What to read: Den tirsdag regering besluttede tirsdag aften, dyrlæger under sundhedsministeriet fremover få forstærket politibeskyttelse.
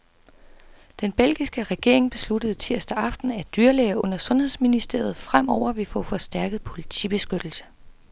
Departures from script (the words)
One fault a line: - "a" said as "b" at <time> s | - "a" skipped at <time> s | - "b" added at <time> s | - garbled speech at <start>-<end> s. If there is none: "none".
- "tirsdag" said as "belgiske" at 1.1 s
- "at" added at 3.3 s
- "vil" added at 5.7 s